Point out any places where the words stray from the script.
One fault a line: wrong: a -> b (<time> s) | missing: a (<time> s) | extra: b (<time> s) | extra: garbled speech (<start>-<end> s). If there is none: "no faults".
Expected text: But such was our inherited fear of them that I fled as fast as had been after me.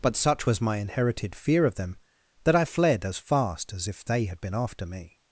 wrong: our -> my (0.6 s)
extra: if they (3.9 s)